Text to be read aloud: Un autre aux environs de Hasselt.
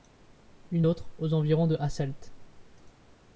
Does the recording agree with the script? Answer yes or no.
no